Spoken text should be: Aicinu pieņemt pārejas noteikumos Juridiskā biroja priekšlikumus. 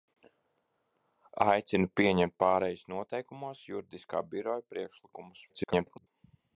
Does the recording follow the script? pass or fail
fail